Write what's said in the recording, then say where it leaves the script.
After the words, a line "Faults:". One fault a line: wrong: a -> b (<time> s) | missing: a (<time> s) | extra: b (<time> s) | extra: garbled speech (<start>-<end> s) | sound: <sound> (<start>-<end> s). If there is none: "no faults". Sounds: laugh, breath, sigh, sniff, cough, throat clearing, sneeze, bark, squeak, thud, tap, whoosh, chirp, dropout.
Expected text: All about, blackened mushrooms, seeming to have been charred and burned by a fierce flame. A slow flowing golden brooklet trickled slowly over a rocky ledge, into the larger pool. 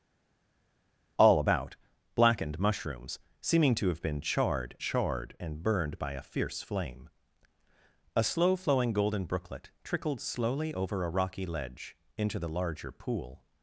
All about, blackened mushrooms, seeming to have been charred charred and burned by a fierce flame. A slow flowing golden brooklet trickled slowly over a rocky ledge, into the larger pool.
Faults:
extra: charred (4.8 s)